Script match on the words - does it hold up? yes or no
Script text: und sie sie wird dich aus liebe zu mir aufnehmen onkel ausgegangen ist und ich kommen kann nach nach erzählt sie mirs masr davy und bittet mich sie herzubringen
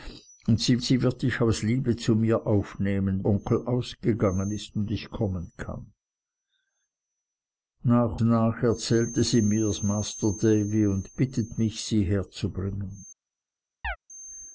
yes